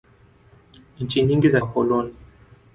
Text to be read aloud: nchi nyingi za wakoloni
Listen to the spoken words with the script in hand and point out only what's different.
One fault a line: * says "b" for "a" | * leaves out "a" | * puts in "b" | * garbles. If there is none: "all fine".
all fine